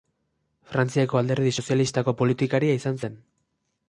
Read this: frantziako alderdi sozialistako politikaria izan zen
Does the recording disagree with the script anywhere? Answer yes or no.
no